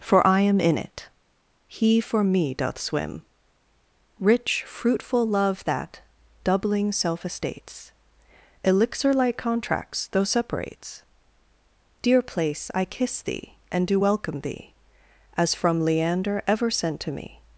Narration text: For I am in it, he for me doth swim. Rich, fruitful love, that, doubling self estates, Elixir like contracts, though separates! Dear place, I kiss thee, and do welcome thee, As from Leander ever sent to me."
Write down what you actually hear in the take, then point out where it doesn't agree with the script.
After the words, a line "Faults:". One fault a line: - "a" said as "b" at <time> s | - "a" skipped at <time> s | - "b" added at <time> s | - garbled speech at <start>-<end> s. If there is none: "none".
For I am in it, he for me doth swim. Rich, fruitful love, that, doubling self estates, Elixir like contracts, though separates! Dear place, I kiss thee, and do welcome thee, As from Leander ever sent to me."
Faults:
none